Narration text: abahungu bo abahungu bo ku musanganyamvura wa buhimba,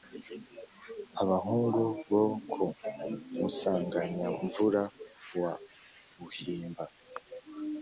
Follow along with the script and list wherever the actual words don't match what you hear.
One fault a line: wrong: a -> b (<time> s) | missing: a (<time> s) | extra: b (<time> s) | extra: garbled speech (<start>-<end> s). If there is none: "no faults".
missing: abahungu bo (2.2 s)